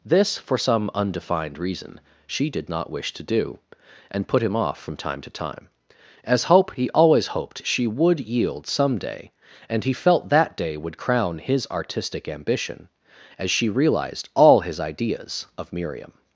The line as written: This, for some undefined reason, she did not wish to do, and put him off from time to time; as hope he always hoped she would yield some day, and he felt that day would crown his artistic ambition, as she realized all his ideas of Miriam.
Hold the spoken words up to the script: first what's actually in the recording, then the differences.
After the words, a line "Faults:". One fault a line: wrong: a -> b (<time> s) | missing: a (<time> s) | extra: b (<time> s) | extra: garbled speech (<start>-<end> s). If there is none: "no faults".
This, for some undefined reason, she did not wish to do, and put him off from time to time; as hope he always hoped she would yield some day, and he felt that day would crown his artistic ambition, as she realized all his ideas of Miriam.
Faults:
no faults